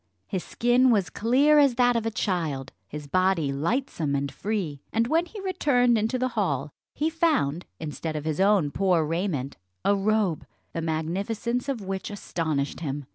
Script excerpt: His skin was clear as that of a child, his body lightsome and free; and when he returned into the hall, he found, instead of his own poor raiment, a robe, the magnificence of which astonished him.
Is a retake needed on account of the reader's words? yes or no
no